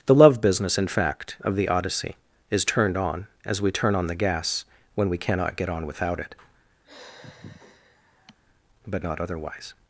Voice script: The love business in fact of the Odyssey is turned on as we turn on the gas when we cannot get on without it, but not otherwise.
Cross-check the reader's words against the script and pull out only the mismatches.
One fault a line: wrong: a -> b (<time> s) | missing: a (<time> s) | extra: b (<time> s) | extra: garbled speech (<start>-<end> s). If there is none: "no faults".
no faults